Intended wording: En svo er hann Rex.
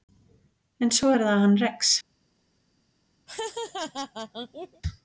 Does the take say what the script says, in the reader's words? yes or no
no